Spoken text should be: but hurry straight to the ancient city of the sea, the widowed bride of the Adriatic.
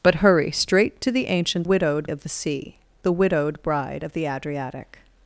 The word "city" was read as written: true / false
false